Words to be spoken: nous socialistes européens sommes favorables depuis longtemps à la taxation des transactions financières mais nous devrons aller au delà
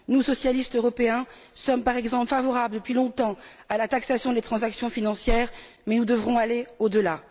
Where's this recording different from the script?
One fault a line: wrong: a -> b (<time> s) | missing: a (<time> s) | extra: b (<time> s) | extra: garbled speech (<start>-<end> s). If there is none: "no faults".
extra: par exemple (1.8 s)